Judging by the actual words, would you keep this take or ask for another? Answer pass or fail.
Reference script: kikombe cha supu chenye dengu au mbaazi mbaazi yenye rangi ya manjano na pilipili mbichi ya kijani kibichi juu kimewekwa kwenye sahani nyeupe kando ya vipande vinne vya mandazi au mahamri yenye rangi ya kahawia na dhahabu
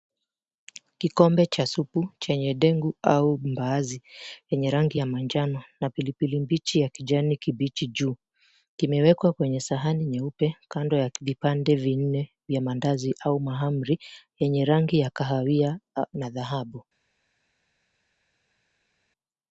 fail